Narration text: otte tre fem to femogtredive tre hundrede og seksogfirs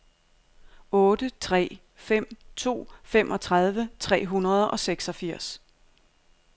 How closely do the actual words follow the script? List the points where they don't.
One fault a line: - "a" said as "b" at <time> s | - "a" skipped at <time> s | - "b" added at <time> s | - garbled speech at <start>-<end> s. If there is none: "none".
none